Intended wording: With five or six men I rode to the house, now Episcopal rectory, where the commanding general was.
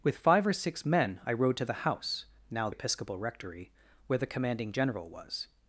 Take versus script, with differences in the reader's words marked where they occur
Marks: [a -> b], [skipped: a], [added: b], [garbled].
With five or six men I rode to the house, now Episcopal rectory, where the commanding general was.